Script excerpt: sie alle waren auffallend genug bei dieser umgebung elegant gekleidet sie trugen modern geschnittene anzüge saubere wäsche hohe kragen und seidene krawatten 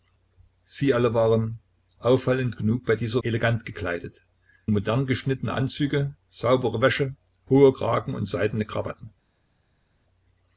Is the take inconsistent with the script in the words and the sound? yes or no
yes